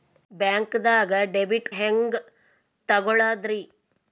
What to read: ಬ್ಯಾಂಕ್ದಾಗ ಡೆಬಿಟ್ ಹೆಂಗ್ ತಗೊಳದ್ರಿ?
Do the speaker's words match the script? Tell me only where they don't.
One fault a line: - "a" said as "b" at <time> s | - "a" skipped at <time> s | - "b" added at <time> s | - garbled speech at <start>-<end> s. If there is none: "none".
none